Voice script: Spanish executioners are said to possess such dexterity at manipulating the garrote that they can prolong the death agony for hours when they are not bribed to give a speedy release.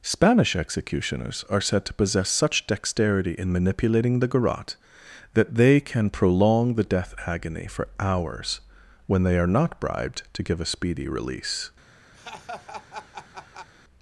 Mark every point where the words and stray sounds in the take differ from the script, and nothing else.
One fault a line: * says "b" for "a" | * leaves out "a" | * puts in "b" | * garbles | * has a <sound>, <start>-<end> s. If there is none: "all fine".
* says "in" for "at"
* has a laugh, 12.1-13.7 s